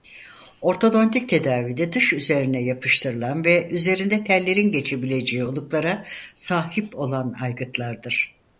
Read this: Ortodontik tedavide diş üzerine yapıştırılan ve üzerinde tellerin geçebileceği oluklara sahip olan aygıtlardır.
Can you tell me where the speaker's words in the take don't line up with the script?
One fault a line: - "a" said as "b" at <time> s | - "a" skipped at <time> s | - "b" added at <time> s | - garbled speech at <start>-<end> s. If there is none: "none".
none